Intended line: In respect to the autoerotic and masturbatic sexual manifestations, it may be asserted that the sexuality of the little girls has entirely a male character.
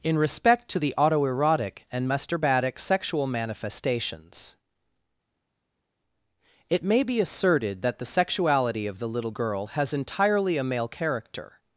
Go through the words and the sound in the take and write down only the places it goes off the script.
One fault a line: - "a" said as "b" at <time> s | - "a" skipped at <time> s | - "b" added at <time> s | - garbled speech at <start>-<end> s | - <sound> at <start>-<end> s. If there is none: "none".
- "girls" said as "girl" at 9.3 s